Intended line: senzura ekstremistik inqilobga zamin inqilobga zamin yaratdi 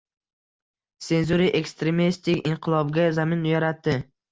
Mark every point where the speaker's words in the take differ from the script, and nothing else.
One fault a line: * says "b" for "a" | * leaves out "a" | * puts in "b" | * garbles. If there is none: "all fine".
* leaves out "inqilobga zamin"